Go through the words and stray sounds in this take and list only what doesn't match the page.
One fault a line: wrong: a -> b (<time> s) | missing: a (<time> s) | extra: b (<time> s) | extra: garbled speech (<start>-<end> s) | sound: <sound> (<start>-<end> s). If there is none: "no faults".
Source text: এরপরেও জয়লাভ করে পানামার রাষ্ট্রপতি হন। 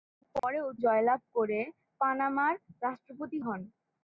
sound: dropout (0.4-0.4 s)